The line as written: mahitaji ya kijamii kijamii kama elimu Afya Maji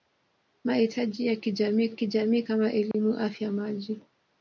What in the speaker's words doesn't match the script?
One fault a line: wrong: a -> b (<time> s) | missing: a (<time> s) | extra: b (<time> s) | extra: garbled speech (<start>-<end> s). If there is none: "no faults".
no faults